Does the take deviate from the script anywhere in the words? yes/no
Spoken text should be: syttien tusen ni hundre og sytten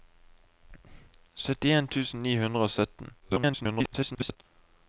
yes